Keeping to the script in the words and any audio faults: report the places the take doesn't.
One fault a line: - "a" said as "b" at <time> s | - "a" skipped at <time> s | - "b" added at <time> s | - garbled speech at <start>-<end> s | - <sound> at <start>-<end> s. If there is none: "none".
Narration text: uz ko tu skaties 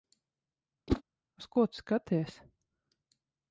- whoosh at 0.9-1.0 s